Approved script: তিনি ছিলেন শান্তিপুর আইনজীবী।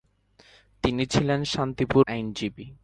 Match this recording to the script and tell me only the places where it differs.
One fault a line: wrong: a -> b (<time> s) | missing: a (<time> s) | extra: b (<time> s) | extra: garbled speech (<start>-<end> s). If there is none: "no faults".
no faults